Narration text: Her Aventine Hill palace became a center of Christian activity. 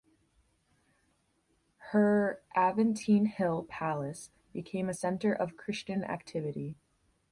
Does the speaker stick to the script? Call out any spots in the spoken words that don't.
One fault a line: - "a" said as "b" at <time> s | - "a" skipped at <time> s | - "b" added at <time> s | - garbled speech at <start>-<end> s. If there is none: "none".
none